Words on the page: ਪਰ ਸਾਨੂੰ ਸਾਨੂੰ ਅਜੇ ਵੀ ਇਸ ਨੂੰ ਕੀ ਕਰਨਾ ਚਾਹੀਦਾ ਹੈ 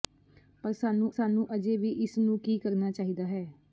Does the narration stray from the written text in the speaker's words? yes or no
no